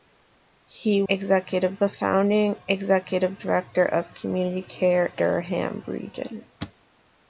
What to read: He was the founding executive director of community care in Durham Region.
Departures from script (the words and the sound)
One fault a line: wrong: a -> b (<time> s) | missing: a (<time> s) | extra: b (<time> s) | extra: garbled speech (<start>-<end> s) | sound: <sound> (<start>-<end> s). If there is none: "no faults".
wrong: was -> executive (1.1 s)
missing: in (5.1 s)